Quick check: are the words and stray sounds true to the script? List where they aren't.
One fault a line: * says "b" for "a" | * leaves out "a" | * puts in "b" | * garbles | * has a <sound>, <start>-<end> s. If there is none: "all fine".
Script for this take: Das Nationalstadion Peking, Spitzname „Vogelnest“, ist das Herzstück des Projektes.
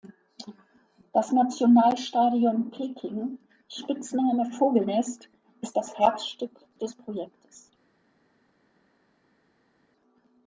all fine